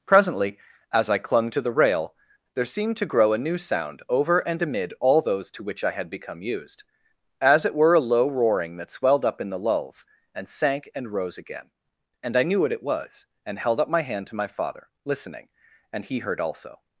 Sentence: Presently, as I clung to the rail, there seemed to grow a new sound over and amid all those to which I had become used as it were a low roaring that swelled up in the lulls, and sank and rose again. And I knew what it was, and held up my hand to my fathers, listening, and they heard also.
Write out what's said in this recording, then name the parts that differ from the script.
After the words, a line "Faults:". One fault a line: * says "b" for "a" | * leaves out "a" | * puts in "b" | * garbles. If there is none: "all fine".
Presently, as I clung to the rail, there seemed to grow a new sound over and amid all those to which I had become used as it were a low roaring that swelled up in the lulls, and sank and rose again. And I knew what it was, and held up my hand to my father, listening, and he heard also.
Faults:
* says "father" for "fathers"
* says "he" for "they"